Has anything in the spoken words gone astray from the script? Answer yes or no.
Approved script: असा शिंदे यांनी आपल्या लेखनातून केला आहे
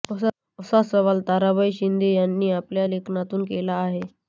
yes